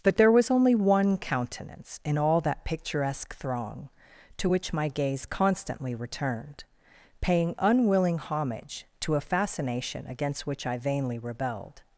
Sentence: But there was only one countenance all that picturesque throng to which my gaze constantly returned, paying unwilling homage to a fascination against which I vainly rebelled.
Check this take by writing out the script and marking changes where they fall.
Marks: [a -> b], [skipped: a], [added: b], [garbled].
But there was only one countenance [added: in] all that picturesque throng to which my gaze constantly returned, paying unwilling homage to a fascination against which I vainly rebelled.